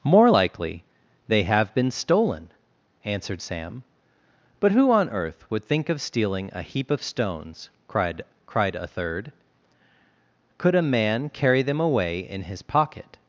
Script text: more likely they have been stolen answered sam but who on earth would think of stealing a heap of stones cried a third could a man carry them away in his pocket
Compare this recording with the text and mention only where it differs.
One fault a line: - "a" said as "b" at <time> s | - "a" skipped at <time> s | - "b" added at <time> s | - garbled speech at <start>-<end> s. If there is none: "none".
- "cried" added at 8.4 s